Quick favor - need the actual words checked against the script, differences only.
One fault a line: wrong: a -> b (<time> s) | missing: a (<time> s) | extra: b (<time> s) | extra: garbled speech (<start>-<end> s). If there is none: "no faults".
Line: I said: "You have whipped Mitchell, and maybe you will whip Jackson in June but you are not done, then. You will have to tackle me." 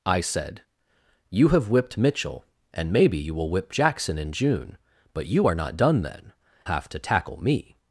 missing: You will (6.3 s)